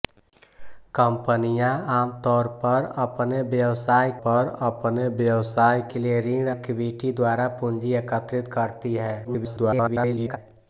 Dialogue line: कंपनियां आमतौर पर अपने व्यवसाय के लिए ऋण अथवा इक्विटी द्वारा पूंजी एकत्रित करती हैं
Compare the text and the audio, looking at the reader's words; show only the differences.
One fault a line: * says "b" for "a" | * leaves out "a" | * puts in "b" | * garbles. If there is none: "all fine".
* puts in "पर अपने व्यवसाय"
* leaves out "अथवा"
* garbles